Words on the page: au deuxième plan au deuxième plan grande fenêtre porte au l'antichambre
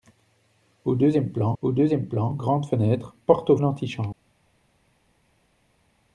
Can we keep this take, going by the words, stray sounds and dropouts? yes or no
yes